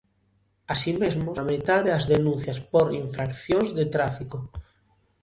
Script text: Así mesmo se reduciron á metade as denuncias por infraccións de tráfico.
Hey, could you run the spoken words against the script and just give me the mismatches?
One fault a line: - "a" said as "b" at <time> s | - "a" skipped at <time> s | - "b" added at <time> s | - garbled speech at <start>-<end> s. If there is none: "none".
- "se reduciron" skipped at 1.3 s